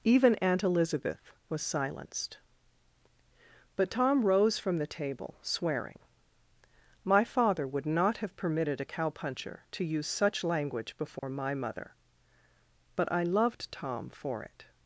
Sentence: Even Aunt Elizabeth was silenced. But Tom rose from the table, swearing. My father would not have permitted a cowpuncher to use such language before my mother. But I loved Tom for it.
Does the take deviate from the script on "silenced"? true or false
false